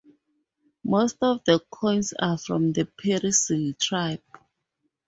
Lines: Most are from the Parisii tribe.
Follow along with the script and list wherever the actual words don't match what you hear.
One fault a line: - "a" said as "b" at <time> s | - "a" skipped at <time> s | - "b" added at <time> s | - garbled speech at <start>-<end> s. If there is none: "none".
- "of the coins" added at 1.2 s